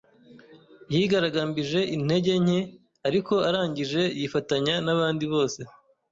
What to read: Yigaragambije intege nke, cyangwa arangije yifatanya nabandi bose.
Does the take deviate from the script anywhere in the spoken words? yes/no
yes